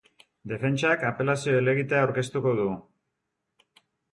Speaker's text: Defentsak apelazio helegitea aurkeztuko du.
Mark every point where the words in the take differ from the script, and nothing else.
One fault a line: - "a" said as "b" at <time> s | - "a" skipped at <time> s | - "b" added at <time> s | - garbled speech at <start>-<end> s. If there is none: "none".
none